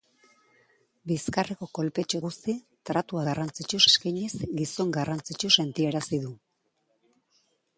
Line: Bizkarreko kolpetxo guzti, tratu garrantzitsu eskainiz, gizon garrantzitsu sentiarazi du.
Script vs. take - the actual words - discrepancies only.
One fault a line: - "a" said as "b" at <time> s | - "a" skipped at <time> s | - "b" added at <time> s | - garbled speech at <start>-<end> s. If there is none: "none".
none